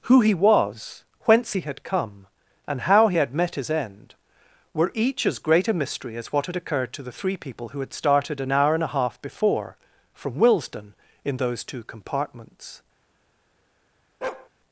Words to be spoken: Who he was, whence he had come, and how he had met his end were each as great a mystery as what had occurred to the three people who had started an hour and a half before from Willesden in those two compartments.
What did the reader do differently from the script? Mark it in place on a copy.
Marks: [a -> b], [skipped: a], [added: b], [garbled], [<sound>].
Who he was, whence he had come, and how he had met his end were each as great a mystery as what had occurred to the three people who had started an hour and a half before from Willesden in those two compartments. [bark]